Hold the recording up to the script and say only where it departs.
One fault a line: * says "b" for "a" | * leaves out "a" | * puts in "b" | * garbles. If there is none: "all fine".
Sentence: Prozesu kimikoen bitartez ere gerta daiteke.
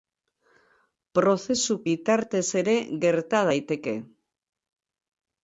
* leaves out "kimikoen"